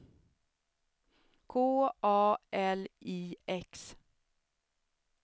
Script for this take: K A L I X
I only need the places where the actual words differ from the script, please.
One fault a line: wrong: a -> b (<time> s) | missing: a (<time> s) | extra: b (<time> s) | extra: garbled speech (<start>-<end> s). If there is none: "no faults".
no faults